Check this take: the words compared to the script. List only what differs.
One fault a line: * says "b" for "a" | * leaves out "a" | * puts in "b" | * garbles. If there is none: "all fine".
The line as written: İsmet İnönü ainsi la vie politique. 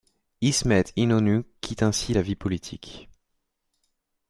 * puts in "quitte"